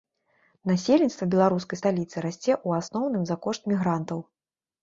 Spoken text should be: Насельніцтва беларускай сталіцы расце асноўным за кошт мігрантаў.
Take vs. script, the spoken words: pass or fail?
fail